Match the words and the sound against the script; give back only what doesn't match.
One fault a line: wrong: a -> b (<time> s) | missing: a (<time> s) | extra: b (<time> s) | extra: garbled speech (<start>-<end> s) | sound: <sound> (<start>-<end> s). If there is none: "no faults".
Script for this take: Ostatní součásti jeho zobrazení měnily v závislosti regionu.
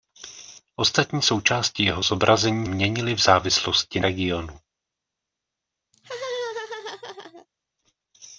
sound: laugh (5.9-7.5 s)